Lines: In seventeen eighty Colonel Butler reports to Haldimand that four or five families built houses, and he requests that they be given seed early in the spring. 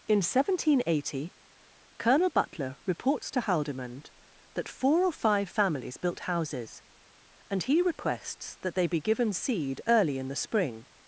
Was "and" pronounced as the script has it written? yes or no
yes